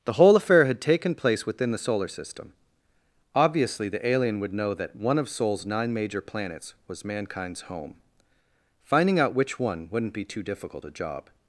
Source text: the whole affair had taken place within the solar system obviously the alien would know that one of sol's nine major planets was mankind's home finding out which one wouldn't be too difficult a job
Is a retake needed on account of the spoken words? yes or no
no